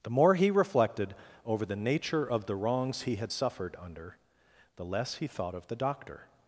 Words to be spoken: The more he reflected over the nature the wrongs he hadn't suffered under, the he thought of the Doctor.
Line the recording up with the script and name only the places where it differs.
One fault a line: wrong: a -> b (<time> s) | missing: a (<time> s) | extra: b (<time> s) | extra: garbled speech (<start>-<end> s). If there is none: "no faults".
extra: of (2.2 s)
wrong: hadn't -> had (3.2 s)
extra: less (4.8 s)